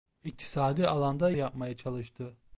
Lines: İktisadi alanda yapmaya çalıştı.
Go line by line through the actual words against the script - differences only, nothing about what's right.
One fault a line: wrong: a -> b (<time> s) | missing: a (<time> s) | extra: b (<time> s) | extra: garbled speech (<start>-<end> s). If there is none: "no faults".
no faults